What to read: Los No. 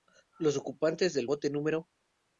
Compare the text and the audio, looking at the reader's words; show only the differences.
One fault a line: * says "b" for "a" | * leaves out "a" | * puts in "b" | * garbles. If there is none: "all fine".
* puts in "ocupantes del bote"